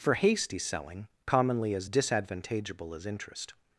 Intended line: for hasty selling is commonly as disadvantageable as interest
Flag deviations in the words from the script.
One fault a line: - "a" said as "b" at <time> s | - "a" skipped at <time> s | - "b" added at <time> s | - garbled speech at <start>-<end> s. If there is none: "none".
- "is" skipped at 1.1 s